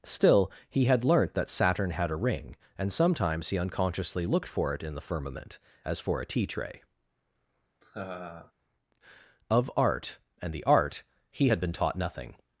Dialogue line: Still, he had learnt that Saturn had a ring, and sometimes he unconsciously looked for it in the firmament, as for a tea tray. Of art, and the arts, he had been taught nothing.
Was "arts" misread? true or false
true